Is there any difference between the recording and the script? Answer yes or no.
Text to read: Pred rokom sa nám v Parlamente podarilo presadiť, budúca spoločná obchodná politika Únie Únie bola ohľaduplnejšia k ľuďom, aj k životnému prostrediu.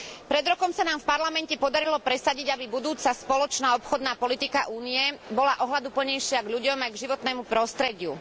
yes